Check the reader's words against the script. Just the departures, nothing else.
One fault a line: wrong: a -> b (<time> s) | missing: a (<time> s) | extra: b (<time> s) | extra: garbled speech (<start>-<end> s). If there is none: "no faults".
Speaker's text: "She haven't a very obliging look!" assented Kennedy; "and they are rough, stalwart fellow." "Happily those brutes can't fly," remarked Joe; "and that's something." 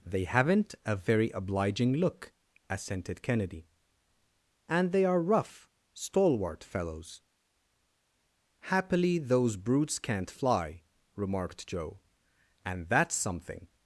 wrong: She -> They (0.1 s)
wrong: fellow -> fellows (6.6 s)